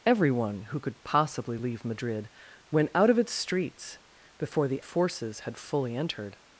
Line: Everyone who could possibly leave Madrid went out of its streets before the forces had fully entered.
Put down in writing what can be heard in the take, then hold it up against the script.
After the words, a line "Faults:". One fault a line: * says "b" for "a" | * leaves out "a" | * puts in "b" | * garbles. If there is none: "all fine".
Everyone who could possibly leave Madrid went out of its streets before the forces had fully entered.
Faults:
all fine